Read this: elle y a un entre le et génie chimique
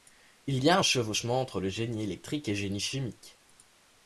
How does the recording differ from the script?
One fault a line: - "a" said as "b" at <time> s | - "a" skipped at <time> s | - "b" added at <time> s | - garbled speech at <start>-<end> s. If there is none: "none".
- "elle" said as "il" at 0.5 s
- "chevauchement" added at 0.8 s
- "génie électrique" added at 1.7 s